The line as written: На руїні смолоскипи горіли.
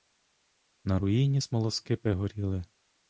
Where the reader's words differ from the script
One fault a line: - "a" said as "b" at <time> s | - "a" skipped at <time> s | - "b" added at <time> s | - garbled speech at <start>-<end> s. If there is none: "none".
none